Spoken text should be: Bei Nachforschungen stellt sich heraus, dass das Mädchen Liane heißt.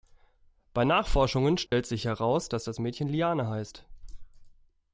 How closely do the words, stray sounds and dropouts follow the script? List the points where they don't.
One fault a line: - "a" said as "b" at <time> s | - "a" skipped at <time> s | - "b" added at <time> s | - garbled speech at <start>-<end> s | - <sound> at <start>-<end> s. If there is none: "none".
- dropout at 1.7-1.7 s